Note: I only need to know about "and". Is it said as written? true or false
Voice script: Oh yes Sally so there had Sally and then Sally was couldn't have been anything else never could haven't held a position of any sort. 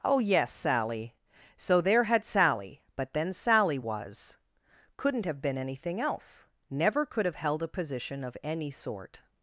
false